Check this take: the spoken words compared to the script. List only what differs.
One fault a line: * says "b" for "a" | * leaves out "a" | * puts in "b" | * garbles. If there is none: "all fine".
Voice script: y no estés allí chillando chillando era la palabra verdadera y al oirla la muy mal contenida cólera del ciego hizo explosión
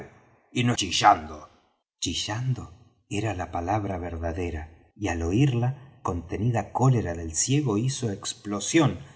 * leaves out "estés allí"
* leaves out "la muy mal"